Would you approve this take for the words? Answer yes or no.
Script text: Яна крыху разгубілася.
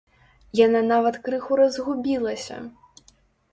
no